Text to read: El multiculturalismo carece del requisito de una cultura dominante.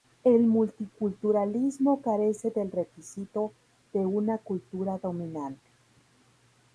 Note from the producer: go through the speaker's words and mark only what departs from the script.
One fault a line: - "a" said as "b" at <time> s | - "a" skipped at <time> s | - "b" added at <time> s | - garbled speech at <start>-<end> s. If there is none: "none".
none